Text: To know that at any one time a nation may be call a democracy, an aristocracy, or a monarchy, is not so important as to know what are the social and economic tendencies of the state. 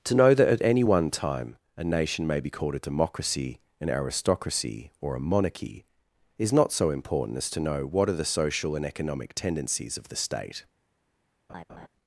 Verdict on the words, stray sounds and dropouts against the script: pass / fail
fail